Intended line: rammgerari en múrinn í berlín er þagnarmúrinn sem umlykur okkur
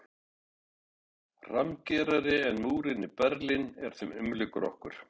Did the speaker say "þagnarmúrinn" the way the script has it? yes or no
no